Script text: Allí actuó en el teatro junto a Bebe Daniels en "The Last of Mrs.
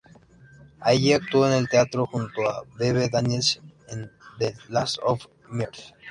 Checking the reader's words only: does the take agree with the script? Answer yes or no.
yes